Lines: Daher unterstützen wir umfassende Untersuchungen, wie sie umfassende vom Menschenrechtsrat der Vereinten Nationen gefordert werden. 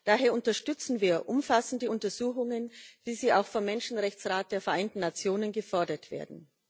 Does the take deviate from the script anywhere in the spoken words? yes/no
yes